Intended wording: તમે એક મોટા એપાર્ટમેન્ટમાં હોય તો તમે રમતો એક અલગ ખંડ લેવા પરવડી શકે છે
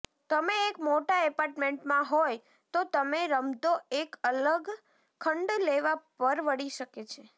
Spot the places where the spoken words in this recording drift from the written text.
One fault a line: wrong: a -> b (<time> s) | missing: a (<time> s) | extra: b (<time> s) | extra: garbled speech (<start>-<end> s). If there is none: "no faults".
no faults